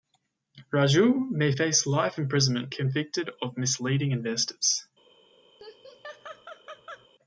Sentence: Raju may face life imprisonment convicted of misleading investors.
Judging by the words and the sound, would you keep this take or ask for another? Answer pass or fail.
fail